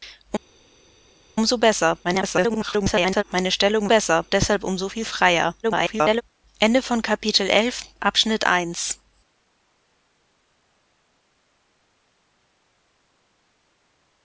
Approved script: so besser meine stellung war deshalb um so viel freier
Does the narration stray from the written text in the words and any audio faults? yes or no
yes